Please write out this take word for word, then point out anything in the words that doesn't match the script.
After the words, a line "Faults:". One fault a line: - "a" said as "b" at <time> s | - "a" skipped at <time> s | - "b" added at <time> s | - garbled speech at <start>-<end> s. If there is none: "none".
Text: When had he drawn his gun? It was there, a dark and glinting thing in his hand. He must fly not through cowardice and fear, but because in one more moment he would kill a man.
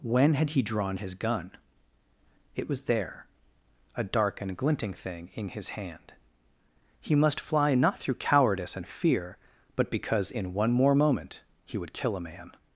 When had he drawn his gun? It was there, a dark and glinting thing in his hand. He must fly not through cowardice and fear, but because in one more moment he would kill a man.
Faults:
none